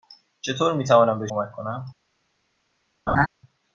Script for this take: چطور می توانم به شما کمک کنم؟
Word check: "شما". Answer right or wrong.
wrong